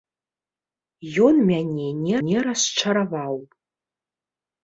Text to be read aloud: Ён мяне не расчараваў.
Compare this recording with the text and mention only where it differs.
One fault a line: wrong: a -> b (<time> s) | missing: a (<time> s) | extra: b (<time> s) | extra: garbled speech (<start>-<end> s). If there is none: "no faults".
extra: не (2.3 s)